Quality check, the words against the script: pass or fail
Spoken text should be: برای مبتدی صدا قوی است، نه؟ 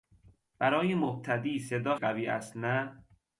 pass